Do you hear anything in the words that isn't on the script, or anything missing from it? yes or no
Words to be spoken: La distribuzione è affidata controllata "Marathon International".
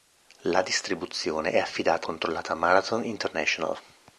no